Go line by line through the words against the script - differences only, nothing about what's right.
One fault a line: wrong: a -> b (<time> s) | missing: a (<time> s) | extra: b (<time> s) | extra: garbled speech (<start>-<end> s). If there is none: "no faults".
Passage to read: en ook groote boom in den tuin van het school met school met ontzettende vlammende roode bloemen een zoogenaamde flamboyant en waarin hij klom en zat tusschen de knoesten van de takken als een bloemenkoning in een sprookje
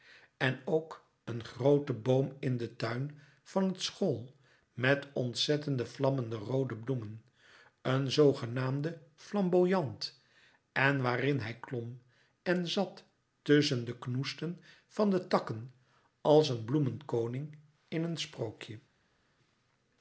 extra: een (1.2 s)
missing: school met (5.1 s)